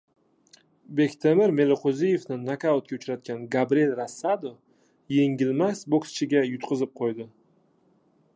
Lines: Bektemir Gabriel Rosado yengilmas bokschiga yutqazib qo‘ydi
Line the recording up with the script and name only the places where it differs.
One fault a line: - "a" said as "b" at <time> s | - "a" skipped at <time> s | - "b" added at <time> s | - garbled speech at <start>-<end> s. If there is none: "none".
- "Meliqo‘ziyevni nokautga uchratgan" added at 1.6 s